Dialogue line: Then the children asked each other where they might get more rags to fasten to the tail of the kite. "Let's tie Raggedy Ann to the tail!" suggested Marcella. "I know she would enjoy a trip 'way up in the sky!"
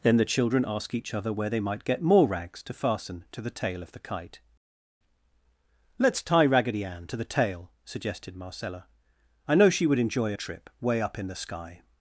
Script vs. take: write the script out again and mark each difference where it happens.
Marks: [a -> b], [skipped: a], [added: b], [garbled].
Then the children [asked -> ask] each other where they might get more rags to fasten to the tail of the kite. "Let's tie Raggedy Ann to the tail!" suggested Marcella. "I know she would enjoy a trip 'way up in the sky!"